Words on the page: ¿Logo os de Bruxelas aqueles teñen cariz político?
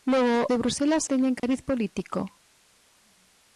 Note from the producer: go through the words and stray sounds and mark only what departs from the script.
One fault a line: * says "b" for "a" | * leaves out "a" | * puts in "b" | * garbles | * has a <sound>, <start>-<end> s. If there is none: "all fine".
* leaves out "os"
* leaves out "aqueles"
* has a dropout, 1.4-1.4 s